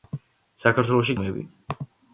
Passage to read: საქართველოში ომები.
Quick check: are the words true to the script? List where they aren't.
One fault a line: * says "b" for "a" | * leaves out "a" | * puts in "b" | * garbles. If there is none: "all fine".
all fine